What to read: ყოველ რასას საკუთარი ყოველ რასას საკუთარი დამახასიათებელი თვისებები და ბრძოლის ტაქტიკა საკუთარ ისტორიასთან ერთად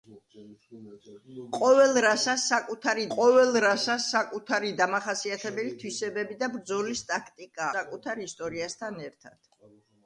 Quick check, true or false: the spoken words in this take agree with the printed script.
true